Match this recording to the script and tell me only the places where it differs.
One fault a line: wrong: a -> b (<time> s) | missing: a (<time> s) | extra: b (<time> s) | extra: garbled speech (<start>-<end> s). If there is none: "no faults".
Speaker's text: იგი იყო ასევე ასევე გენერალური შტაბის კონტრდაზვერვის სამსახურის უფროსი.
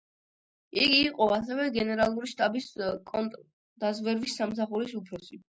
missing: ასევე (1.7 s)